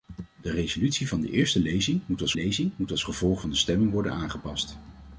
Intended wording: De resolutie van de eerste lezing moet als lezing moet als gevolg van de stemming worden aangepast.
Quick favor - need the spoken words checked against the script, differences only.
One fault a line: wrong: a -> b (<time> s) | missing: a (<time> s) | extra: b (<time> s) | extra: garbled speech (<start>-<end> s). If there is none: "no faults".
no faults